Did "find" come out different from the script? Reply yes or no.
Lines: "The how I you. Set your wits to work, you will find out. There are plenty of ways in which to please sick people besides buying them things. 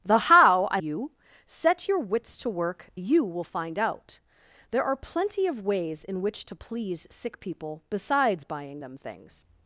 no